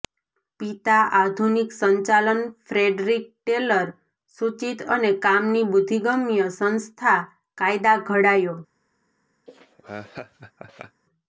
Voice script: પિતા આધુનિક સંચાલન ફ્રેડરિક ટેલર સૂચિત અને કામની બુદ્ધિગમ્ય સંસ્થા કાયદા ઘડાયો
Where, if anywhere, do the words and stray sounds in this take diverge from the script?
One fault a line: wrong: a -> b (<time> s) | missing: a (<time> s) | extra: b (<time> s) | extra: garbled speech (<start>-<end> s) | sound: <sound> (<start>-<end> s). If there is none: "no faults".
sound: laugh (9.5-11.0 s)